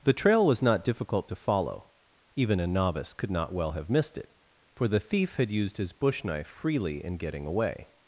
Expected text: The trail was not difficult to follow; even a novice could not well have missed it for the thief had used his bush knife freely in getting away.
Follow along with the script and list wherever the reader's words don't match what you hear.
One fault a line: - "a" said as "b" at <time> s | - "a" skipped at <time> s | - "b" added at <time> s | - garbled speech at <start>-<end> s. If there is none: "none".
none